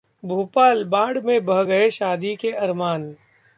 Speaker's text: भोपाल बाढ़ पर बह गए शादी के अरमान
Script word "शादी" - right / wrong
right